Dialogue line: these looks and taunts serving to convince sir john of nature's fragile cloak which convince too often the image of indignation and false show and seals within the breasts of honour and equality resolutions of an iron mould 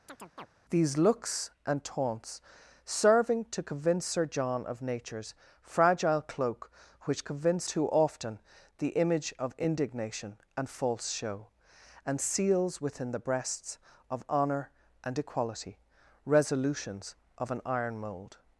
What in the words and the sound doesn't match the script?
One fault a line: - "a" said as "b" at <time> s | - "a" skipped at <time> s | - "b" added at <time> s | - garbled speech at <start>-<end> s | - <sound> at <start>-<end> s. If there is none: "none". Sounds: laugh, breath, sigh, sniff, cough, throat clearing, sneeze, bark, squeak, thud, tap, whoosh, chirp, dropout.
- chirp at 0.1-0.5 s